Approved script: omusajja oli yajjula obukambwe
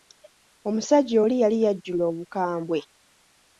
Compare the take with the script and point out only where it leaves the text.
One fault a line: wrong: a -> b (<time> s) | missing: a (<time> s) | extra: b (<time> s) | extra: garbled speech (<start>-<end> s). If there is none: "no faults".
extra: yali (1.4 s)